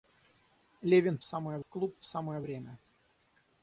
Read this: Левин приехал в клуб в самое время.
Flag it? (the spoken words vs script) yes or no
yes